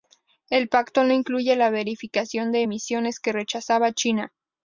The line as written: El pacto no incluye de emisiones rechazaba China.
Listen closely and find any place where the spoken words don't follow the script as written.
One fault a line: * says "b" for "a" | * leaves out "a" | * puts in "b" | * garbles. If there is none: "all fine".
* puts in "la verificación"
* puts in "que"